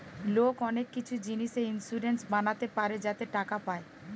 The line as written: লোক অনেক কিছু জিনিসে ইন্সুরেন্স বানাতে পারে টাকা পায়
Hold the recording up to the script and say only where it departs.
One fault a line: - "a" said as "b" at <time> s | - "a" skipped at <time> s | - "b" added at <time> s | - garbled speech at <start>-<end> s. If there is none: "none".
- "যাতে" added at 3.0 s